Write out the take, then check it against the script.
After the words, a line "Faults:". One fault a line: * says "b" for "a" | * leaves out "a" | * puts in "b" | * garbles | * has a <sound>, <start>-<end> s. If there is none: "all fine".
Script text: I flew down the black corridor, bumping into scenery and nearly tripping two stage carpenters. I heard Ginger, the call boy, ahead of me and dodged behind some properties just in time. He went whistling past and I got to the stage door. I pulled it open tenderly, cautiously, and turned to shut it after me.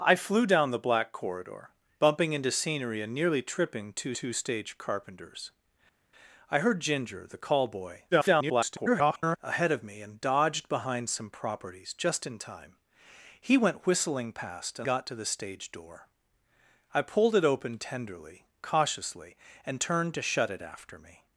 I flew down the black corridor, bumping into scenery and nearly tripping two two stage carpenters. I heard Ginger, the call boy, [garbled] ahead of me and dodged behind some properties just in time. He went whistling past and got to the stage door. I pulled it open tenderly, cautiously, and turned to shut it after me.
Faults:
* puts in "two"
* garbles
* leaves out "I"